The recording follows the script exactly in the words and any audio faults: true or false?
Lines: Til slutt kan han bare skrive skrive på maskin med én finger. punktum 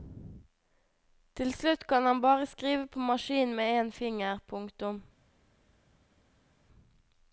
false